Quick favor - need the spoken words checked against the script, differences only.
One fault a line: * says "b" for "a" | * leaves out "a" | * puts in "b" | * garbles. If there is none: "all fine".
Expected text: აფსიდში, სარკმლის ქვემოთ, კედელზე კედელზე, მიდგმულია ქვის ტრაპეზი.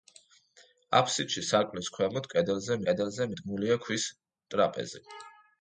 all fine